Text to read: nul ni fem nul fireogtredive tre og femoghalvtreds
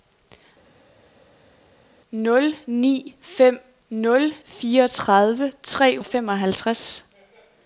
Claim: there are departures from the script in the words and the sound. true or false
false